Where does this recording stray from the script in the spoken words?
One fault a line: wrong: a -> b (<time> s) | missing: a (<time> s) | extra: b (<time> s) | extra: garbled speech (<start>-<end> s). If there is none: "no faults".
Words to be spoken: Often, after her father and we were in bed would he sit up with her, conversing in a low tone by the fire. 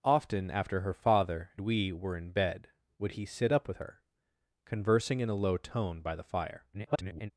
missing: and (1.5 s)
extra: garbled speech (6.7-7.3 s)